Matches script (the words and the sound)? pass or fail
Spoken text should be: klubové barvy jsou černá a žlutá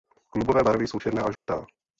fail